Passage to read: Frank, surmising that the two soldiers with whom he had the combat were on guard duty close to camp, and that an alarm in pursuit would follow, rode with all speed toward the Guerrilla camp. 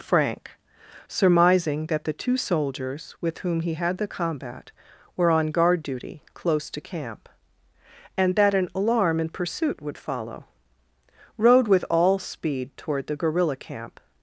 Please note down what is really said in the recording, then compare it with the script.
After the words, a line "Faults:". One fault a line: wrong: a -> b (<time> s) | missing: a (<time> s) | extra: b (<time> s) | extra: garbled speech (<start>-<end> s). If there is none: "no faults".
Frank, surmising that the two soldiers with whom he had the combat were on guard duty close to camp, and that an alarm in pursuit would follow, rode with all speed toward the Guerrilla camp.
Faults:
no faults